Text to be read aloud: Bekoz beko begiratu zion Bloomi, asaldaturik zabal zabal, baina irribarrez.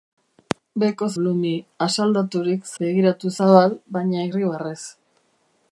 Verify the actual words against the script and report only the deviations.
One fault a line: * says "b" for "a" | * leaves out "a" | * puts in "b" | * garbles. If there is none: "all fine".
* leaves out "beko begiratu zion"
* says "begiratu" for "zabal"